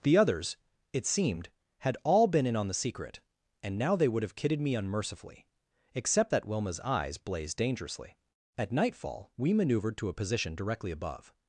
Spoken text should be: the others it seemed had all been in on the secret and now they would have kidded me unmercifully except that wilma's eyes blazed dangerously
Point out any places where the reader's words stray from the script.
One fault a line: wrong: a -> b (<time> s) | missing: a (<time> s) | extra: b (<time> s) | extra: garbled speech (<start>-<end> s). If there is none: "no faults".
extra: at nightfall we maneuvered to a position directly above (8.6 s)